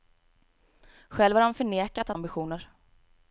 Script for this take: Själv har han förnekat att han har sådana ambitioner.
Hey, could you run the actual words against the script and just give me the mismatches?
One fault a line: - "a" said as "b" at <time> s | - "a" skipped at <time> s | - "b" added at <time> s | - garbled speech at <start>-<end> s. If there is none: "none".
- "han har sådana" skipped at 2.2 s